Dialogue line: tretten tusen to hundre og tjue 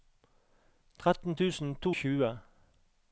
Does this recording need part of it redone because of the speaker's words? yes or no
yes